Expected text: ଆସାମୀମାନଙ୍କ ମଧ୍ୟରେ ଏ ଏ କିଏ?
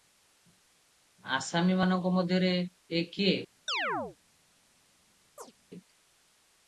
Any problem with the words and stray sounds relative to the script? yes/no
yes